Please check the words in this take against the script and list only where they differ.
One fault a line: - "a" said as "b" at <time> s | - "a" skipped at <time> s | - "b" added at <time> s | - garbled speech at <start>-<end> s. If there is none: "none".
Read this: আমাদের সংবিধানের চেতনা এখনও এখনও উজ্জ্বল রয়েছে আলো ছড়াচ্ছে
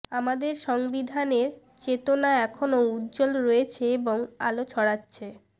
- "এখনও" skipped at 2.8 s
- "এবং" added at 4.0 s